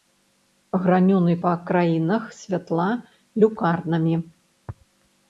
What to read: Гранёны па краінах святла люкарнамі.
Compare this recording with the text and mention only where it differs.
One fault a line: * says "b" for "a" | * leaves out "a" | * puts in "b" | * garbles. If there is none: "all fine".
all fine